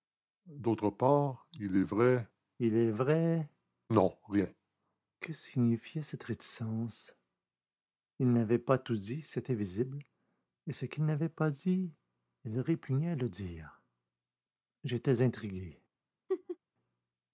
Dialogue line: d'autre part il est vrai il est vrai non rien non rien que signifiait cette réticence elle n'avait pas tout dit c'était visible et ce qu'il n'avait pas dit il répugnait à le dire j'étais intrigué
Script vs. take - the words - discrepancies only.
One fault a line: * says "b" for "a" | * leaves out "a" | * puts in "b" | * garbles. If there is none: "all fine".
* leaves out "non rien"
* says "il" for "elle"